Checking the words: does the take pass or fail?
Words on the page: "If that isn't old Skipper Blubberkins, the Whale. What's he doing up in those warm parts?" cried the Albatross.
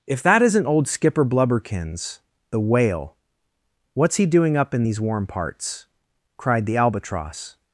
fail